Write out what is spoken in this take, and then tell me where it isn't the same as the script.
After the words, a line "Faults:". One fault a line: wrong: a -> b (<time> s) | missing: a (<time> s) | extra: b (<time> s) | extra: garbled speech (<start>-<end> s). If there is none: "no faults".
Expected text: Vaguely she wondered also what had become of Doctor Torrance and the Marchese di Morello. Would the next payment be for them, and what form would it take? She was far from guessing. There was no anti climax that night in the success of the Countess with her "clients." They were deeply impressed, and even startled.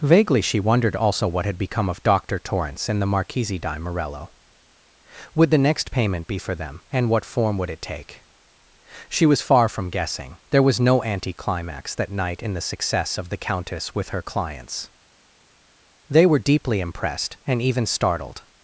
Vaguely she wondered also what had become of Doctor Torrance and the Marchese di Morello. Would the next payment be for them, and what form would it take? She was far from guessing. There was no anti climax that night in the success of the Countess with her "clients." They were deeply impressed, and even startled.
Faults:
no faults